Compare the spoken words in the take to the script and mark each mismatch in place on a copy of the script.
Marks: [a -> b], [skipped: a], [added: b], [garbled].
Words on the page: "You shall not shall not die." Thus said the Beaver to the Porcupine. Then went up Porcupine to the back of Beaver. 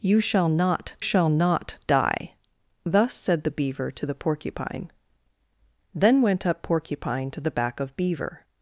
"You shall not shall not die." Thus said the Beaver to the Porcupine. Then went up Porcupine to the back of Beaver.